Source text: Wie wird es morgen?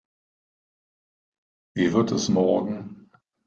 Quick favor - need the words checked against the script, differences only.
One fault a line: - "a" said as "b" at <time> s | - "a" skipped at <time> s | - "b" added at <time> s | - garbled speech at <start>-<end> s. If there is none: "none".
none